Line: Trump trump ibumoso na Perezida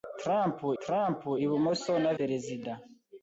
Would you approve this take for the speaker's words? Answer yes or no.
yes